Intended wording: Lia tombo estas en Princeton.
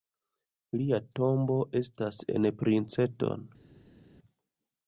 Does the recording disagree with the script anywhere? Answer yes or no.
no